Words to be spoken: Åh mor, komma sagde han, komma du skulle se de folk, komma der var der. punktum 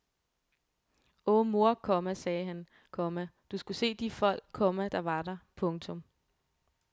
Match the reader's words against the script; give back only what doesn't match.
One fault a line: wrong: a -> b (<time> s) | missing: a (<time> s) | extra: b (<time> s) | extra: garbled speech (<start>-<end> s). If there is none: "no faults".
no faults